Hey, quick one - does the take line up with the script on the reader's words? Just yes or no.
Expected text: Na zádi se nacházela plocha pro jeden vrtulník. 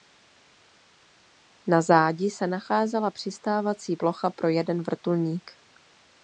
no